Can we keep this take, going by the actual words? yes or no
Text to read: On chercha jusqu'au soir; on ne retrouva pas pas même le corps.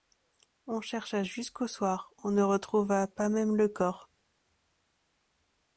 no